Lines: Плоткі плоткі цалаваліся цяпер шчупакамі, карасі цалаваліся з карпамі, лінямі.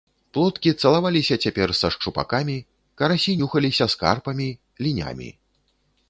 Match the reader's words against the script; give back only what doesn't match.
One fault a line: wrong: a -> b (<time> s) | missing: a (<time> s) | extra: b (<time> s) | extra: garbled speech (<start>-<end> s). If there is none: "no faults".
missing: плоткі (0.7 s)
extra: са (1.8 s)
wrong: цалаваліся -> нюхаліся (3.4 s)